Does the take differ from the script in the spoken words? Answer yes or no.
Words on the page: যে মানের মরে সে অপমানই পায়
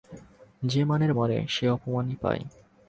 no